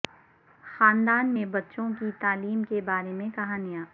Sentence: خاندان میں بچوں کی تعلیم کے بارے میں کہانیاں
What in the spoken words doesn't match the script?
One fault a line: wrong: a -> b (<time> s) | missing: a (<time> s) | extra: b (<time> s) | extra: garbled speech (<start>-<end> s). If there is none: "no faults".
no faults